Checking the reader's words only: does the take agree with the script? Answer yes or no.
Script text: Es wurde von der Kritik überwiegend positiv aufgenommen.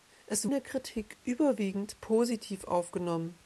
no